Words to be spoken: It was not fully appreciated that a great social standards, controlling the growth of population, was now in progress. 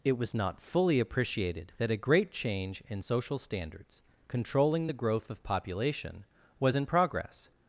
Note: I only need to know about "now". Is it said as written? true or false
false